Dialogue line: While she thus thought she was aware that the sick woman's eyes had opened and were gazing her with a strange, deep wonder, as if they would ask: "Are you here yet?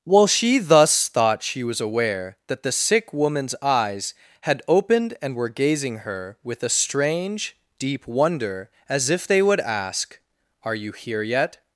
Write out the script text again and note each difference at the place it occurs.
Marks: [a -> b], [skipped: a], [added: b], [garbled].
While she thus thought she was aware that the sick woman's eyes had opened and were gazing her with a strange, deep wonder, as if they would ask: "Are you here yet?